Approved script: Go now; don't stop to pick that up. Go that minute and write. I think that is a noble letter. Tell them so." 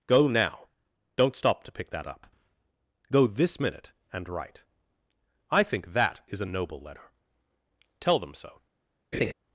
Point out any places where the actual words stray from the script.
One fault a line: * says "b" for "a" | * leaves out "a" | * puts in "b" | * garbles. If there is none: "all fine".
* says "this" for "that"